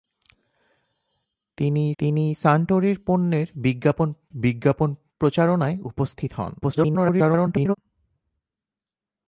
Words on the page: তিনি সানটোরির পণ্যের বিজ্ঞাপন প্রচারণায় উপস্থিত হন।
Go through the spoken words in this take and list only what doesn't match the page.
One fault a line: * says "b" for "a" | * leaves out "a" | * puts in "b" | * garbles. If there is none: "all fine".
* puts in "তিনি"
* puts in "বিজ্ঞাপন"
* garbles